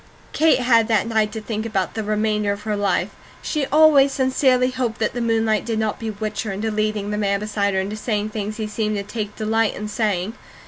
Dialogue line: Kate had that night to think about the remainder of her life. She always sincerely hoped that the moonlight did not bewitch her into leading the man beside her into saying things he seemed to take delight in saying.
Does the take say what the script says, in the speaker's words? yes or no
yes